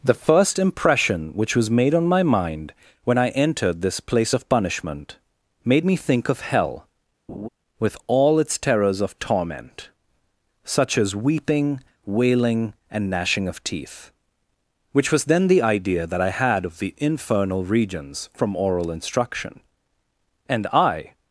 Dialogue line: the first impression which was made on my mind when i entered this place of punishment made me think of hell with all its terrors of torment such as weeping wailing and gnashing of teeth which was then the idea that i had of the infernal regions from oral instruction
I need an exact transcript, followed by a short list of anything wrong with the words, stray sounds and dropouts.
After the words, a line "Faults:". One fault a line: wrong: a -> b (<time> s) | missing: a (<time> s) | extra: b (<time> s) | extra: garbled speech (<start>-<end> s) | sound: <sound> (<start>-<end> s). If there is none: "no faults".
the first impression which was made on my mind when i entered this place of punishment made me think of hell with all its terrors of torment such as weeping wailing and gnashing of teeth which was then the idea that i had of the infernal regions from oral instruction and i
Faults:
sound: laugh (7.3-7.5 s)
extra: and i (20.5 s)